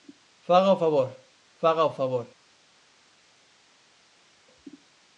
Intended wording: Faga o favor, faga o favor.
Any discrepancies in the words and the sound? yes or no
no